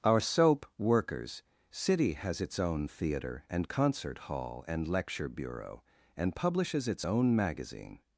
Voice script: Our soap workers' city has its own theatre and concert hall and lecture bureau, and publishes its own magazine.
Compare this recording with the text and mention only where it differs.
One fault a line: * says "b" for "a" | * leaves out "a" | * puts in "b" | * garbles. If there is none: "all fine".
all fine